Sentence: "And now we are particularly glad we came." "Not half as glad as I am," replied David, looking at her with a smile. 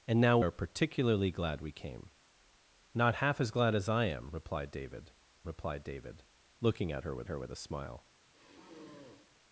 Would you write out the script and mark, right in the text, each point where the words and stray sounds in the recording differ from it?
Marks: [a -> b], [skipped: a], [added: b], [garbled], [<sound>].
"And now [skipped: we] are particularly glad we came." "Not half as glad as I am," replied David, [added: replied David] looking at her with [added: her with] a smile. [sigh]